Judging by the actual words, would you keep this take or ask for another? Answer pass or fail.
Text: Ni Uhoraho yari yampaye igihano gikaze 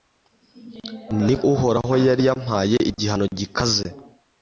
pass